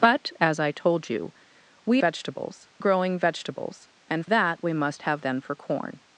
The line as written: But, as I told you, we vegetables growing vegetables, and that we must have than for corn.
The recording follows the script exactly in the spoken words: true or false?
true